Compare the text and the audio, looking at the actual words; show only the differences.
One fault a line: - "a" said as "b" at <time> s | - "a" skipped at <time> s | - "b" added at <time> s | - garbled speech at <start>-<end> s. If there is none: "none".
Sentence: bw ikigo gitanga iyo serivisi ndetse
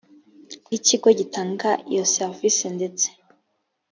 none